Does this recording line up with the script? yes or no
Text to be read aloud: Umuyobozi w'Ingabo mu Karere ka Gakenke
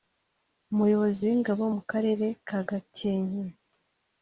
yes